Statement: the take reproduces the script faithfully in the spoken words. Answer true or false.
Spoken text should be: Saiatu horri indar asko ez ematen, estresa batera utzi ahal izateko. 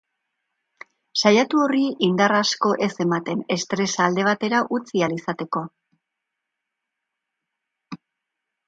false